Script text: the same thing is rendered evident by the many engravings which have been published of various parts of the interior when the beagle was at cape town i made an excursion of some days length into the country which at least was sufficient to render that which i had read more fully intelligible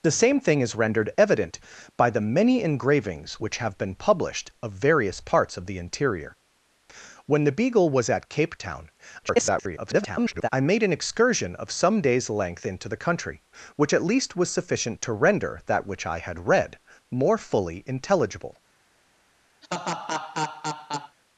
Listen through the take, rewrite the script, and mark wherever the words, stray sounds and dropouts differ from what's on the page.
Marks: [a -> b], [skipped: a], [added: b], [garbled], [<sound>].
the same thing is rendered evident by the many engravings which have been published of various parts of the interior when the beagle was at cape town [garbled] i made an excursion of some days length into the country which at least was sufficient to render that which i had read more fully intelligible [laugh]